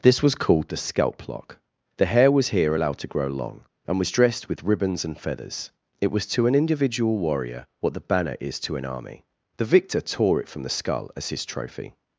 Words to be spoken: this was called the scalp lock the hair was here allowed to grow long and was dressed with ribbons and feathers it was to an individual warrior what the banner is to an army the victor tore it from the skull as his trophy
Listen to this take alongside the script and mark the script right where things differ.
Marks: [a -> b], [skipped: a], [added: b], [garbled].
this was called the scalp lock the hair was here allowed to grow long and was dressed with ribbons and feathers it was to an individual warrior what the banner is to an army the victor tore it from the skull as his trophy